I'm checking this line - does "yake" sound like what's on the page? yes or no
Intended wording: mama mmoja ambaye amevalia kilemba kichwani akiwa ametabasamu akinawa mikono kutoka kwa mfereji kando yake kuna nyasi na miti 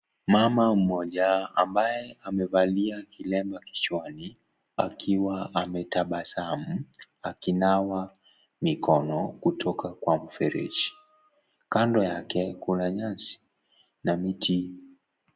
yes